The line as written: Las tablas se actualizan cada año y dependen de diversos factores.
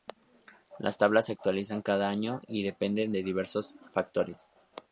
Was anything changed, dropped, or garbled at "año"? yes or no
no